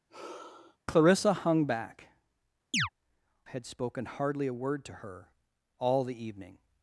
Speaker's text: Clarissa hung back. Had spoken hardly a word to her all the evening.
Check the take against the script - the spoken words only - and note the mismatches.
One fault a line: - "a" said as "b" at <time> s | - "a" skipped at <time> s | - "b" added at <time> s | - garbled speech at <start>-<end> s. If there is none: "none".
none